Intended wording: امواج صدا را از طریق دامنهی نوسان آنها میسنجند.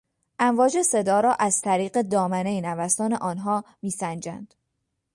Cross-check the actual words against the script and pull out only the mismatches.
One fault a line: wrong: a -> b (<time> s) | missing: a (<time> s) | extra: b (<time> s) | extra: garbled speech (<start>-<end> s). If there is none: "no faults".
no faults